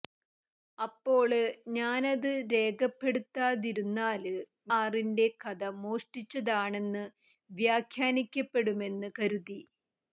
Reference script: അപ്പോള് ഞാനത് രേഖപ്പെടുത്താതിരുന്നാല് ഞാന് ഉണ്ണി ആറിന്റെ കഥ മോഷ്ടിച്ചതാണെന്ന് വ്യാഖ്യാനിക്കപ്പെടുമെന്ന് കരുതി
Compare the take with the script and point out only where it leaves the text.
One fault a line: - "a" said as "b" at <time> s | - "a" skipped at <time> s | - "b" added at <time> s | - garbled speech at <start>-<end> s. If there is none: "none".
- "ഞാന് ഉണ്ണി" skipped at 4.3 s